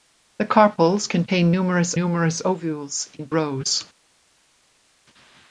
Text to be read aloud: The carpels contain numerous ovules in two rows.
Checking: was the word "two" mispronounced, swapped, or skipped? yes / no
yes